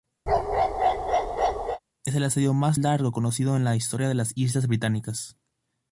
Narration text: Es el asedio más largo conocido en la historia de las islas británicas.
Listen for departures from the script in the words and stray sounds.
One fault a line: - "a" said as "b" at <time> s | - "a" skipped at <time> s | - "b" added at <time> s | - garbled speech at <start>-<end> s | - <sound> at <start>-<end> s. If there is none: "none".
- bark at 0.3-1.8 s